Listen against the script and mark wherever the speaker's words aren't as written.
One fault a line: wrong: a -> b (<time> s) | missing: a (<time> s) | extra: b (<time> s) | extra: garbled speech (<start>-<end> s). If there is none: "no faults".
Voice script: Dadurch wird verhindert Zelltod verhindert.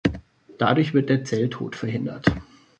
wrong: verhindert -> der (1.1 s)